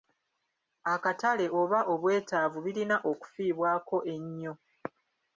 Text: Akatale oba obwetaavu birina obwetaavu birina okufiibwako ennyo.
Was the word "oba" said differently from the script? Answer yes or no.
no